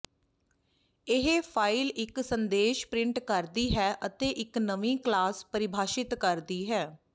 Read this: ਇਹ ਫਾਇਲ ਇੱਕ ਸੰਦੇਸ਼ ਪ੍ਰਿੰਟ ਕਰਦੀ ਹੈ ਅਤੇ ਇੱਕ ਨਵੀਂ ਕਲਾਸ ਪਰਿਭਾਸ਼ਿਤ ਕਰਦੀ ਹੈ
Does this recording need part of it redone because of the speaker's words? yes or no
no